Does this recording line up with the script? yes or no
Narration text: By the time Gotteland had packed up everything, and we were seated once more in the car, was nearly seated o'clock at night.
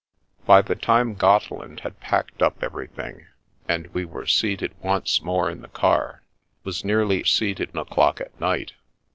yes